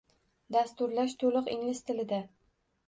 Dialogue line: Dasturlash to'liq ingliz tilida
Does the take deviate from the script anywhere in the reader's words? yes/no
no